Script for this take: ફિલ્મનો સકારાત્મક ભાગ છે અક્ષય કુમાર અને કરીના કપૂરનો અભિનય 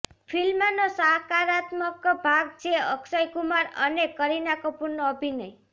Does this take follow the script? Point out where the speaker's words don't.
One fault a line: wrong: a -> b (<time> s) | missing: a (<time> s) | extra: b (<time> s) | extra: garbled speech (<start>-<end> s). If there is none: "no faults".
no faults